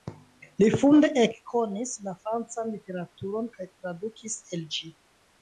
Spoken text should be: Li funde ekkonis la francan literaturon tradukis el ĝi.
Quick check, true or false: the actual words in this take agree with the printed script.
false